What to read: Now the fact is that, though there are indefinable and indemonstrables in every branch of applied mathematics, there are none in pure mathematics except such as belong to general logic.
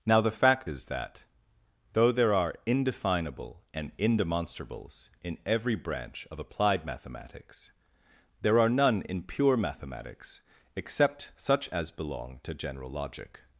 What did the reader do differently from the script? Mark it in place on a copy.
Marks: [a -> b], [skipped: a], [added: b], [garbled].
Now the fact is that, though there are indefinable and indemonstrables in every branch of applied mathematics, there are none in pure mathematics except such as belong to general logic.